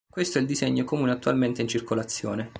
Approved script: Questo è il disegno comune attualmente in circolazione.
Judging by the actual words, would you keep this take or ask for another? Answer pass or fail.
pass